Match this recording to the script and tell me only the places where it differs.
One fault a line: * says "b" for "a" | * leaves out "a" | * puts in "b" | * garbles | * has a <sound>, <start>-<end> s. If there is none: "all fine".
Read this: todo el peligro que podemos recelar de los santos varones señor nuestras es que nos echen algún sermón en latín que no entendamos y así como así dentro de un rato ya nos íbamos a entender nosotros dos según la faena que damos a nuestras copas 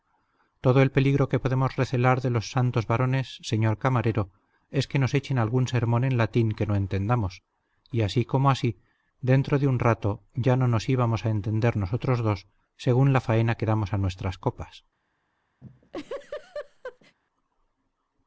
* says "camarero" for "nuestras"
* puts in "no"
* has a laugh, 15.6-17.2 s